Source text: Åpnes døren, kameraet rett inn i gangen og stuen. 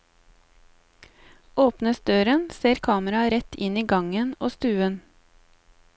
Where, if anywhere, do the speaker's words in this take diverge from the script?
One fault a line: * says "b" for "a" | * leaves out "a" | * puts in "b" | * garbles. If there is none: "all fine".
* puts in "ser"